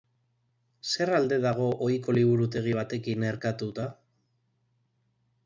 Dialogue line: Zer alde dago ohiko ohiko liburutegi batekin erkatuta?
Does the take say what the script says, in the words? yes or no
no